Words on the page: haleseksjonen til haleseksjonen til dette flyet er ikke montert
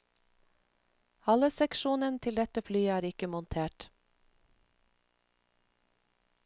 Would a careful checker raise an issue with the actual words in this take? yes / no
yes